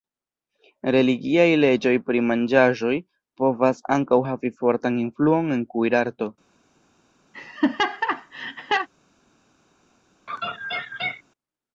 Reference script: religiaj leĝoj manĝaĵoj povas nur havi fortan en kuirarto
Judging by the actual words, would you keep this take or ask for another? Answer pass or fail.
fail